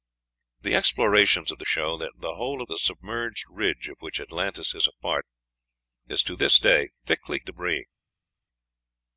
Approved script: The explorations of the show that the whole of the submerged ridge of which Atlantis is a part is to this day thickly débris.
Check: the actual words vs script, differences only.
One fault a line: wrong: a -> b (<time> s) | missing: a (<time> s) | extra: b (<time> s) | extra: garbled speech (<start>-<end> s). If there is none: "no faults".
no faults